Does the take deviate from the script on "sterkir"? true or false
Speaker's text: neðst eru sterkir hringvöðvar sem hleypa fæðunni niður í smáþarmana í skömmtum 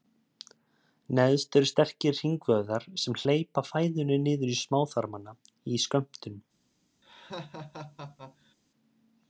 false